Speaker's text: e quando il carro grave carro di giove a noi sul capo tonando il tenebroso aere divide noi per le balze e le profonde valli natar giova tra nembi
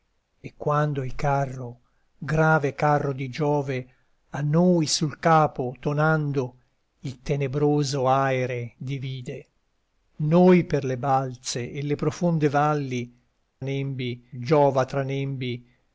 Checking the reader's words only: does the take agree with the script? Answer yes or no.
no